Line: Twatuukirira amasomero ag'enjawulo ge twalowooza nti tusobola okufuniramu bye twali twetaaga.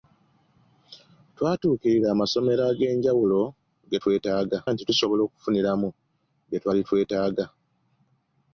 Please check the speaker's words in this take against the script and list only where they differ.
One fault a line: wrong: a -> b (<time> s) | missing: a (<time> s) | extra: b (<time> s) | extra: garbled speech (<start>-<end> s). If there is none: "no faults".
wrong: twalowooza -> twetaaga (4.0 s)